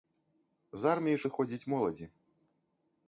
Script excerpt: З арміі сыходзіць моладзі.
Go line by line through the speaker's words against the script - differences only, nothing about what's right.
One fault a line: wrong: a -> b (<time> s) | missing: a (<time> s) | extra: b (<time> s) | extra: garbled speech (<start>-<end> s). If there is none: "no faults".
no faults